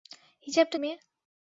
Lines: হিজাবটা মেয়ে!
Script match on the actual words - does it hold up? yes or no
yes